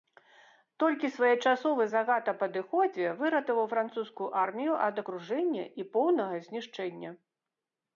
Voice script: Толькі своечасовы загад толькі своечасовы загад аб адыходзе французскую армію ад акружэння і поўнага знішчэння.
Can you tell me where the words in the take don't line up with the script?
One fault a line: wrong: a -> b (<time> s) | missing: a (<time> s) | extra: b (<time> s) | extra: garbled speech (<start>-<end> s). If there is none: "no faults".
missing: толькі своечасовы загад (2.3 s)
extra: выратаваў (3.2 s)